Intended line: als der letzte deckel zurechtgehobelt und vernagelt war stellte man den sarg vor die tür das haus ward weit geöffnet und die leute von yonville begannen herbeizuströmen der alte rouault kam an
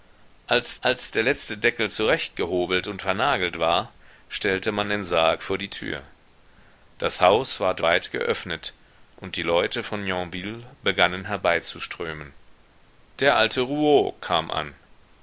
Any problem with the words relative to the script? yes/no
yes